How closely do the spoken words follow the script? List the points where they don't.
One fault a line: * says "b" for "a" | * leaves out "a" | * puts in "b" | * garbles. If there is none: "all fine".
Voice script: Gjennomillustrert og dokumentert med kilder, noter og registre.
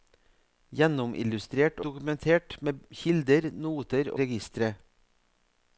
* leaves out "og"
* leaves out "og"